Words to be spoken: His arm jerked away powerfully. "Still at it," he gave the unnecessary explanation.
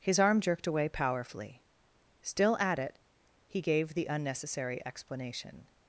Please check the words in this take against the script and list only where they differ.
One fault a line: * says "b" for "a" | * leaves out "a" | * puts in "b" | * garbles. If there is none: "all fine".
all fine